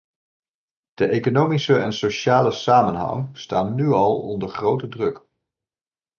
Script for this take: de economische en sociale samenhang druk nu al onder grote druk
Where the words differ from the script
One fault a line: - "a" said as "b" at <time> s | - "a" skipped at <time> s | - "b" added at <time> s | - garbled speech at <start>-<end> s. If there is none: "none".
- "druk" said as "staan" at 3.4 s